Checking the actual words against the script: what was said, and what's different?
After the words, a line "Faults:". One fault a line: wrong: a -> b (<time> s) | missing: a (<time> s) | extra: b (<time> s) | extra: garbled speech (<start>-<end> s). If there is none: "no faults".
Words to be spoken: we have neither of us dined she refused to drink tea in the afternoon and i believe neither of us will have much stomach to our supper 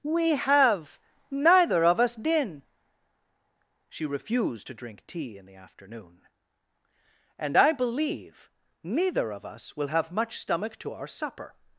we have neither of us din she refused to drink tea in the afternoon and i believe neither of us will have much stomach to our supper
Faults:
wrong: dined -> din (2.1 s)